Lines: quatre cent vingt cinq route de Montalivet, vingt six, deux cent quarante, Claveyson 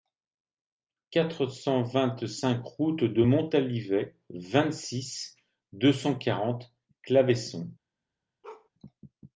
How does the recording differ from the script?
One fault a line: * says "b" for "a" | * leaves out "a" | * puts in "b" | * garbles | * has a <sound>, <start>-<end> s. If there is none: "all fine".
* has a bark, 8.4-8.7 s